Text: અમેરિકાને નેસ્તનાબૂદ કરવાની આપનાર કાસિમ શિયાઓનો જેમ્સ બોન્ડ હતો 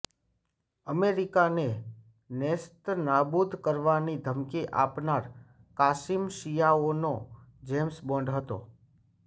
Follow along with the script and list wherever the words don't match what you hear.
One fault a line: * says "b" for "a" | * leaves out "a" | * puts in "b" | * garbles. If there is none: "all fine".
* puts in "ધમકી"